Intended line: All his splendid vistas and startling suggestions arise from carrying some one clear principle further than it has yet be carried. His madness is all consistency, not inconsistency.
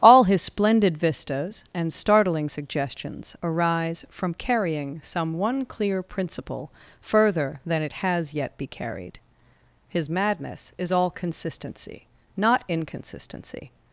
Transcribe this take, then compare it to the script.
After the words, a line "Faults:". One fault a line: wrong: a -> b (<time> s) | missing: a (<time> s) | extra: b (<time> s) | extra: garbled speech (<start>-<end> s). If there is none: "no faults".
All his splendid vistas and startling suggestions arise from carrying some one clear principle further than it has yet be carried. His madness is all consistency, not inconsistency.
Faults:
no faults